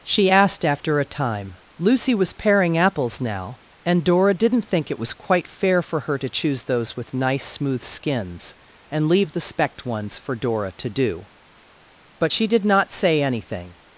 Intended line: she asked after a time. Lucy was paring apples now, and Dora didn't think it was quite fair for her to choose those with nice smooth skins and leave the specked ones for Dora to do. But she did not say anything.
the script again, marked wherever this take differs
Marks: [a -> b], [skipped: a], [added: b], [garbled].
she asked after a time. Lucy was paring apples now, and Dora didn't think it was quite fair for her to choose those with nice smooth skins and leave the specked ones for Dora to do. But she did not say anything.